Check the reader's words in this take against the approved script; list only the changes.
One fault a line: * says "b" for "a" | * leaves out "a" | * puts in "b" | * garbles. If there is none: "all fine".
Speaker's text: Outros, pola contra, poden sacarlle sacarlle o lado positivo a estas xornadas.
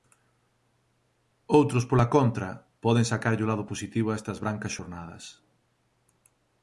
* leaves out "sacarlle"
* puts in "brancas"